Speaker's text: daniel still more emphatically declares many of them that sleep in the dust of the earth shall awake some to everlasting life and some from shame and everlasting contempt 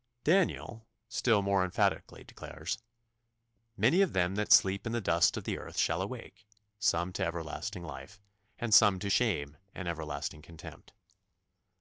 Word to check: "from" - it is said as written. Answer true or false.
false